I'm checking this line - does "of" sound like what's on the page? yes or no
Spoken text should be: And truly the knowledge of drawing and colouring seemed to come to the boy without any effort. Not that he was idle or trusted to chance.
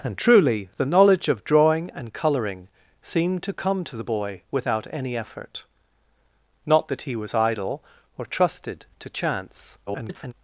yes